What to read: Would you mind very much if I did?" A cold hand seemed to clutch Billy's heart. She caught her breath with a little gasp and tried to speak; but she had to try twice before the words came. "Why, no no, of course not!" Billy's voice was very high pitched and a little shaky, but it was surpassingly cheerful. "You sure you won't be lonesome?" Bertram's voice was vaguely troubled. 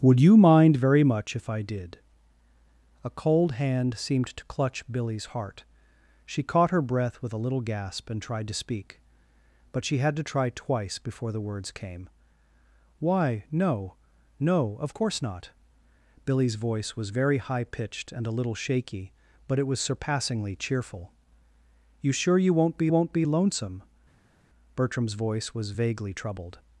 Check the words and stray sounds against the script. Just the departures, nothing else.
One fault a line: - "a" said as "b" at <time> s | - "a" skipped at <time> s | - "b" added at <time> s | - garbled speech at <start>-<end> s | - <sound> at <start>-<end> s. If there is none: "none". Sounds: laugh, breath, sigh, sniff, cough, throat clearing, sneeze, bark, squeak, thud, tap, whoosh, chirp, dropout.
- "won't be" added at 22.9 s